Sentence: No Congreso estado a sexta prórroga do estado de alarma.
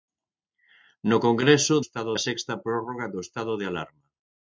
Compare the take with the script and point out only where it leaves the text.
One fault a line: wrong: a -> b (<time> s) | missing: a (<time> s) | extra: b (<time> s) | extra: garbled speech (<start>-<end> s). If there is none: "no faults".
no faults